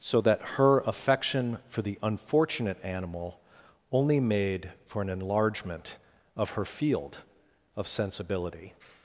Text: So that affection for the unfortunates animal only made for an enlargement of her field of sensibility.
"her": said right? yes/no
yes